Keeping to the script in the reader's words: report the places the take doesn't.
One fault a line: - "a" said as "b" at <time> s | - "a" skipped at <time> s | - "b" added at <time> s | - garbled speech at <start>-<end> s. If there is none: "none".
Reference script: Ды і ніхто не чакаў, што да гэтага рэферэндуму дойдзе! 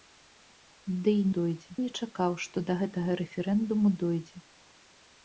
- "ніхто" said as "дойдзе" at 1.4 s